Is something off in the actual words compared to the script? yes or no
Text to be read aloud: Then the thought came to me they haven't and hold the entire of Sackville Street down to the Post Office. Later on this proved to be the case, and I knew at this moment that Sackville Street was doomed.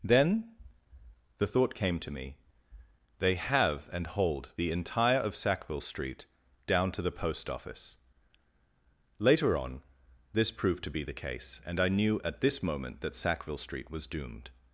yes